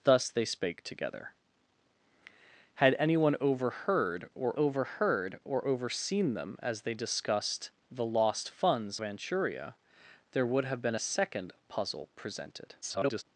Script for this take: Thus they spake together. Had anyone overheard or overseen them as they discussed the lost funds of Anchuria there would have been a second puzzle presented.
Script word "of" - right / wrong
wrong